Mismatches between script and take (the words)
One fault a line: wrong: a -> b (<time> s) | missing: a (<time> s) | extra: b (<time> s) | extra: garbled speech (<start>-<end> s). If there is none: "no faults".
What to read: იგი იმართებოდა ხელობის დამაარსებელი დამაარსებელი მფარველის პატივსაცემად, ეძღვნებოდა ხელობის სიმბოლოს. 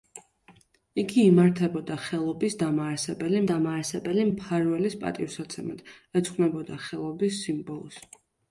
no faults